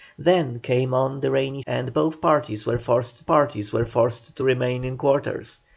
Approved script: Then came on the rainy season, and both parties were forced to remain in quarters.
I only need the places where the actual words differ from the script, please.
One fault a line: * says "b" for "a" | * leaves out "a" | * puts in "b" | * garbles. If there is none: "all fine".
* leaves out "season"
* puts in "parties were forced"